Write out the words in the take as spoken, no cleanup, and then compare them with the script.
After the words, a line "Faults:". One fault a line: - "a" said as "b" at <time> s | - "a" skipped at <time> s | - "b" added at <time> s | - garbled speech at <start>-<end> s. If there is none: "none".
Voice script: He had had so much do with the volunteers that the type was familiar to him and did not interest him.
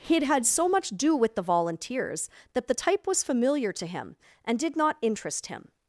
He had had so much do with the volunteers that the type was familiar to him and did not interest him.
Faults:
none